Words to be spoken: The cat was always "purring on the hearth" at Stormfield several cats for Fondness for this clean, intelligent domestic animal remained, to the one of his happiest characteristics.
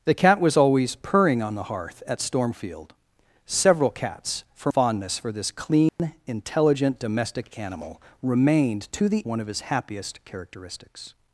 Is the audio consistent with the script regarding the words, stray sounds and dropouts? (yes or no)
no